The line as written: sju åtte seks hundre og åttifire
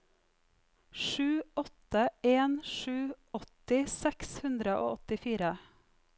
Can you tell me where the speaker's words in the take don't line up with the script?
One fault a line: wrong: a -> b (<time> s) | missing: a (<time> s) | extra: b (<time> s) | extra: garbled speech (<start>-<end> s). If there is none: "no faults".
extra: en sju åtti (2.2 s)